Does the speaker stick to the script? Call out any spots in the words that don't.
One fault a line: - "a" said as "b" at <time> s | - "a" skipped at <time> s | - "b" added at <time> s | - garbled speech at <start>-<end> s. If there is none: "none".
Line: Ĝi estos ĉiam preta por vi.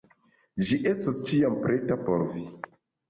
none